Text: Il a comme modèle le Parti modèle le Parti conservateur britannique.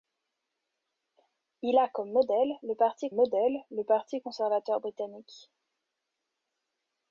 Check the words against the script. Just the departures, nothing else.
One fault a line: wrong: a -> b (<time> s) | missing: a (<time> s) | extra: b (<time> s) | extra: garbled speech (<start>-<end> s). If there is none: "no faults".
no faults